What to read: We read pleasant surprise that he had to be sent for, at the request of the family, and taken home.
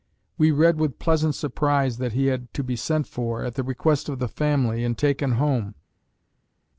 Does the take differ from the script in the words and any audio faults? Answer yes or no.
yes